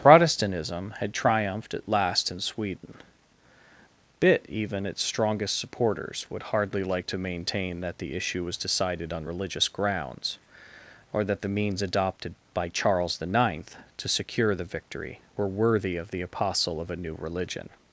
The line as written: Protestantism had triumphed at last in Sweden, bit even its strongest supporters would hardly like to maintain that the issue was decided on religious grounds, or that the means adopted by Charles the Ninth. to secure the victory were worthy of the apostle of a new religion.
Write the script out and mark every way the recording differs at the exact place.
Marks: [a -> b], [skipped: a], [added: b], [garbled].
Protestantism had triumphed at last in Sweden, bit even its strongest supporters would hardly like to maintain that the issue was decided on religious grounds, or that the means adopted by Charles the Ninth. to secure the victory were worthy of the apostle of a new religion.